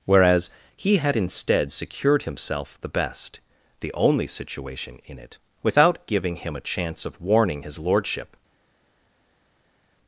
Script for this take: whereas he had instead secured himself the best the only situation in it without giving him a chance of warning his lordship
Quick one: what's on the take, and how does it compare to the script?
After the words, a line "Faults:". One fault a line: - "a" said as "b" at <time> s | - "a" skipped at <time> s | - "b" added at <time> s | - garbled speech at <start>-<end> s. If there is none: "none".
whereas he had instead secured himself the best the only situation in it without giving him a chance of warning his lordship
Faults:
none